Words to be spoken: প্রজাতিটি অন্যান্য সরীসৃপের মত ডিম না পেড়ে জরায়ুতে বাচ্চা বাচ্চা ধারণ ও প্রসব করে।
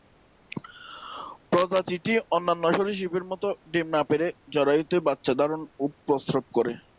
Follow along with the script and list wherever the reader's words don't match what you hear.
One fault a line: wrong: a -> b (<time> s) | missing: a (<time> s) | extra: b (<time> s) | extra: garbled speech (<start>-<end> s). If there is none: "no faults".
missing: বাচ্চা (5.3 s)